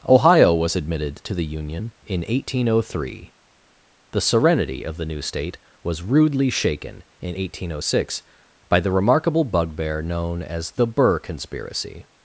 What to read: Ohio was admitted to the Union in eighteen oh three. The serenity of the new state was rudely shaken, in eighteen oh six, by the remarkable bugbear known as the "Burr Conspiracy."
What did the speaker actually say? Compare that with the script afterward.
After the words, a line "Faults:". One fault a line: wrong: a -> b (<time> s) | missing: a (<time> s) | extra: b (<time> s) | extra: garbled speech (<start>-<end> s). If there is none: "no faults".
Ohio was admitted to the Union in eighteen oh three. The serenity of the new state was rudely shaken, in eighteen oh six, by the remarkable bugbear known as the "Burr Conspiracy."
Faults:
no faults